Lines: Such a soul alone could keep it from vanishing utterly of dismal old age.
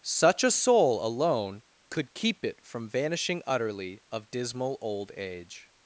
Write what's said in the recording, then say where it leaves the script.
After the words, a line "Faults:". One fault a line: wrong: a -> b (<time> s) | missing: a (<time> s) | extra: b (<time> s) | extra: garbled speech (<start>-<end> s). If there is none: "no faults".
Such a soul alone could keep it from vanishing utterly of dismal old age.
Faults:
no faults